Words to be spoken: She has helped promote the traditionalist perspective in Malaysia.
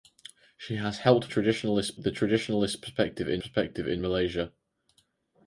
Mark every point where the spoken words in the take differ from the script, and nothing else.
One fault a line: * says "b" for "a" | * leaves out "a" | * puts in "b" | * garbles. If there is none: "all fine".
* says "traditionalist" for "promote"
* puts in "perspective in"